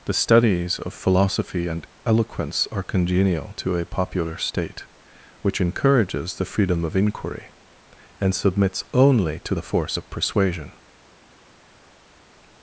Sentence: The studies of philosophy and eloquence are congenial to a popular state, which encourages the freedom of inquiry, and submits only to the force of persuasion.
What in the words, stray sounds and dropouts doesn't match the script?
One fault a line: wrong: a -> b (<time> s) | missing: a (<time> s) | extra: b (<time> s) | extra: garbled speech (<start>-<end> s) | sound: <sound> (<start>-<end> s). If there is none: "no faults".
no faults